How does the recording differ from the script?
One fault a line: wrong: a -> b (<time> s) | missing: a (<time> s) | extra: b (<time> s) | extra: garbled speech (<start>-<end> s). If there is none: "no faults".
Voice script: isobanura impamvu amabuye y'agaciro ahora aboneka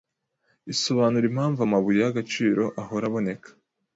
no faults